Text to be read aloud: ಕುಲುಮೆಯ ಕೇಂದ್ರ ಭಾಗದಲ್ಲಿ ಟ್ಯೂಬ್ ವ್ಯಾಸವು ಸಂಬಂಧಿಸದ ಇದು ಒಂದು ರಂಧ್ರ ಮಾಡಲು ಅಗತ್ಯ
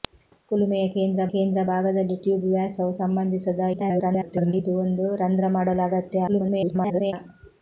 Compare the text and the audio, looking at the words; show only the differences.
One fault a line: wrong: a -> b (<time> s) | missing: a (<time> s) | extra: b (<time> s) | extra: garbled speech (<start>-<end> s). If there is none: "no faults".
extra: ಕೇಂದ್ರ (1.3 s)
extra: garbled speech (3.7-4.5 s)
extra: garbled speech (6.3-7.1 s)